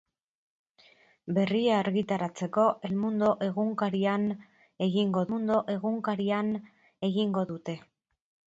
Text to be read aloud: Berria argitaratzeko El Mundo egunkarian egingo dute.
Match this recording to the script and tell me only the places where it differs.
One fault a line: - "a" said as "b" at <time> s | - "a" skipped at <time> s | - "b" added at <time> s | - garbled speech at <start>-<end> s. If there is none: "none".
- "Mundo egunkarian egingo" added at 5.3 s